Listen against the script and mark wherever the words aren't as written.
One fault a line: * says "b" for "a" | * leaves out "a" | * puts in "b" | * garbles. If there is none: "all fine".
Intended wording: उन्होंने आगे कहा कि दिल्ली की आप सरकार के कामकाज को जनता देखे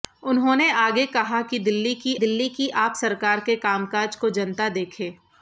* puts in "दिल्ली की"